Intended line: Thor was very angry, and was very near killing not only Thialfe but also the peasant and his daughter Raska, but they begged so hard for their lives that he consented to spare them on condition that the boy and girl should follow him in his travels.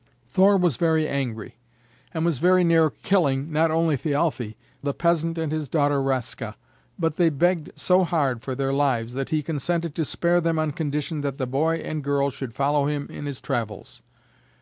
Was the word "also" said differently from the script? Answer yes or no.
yes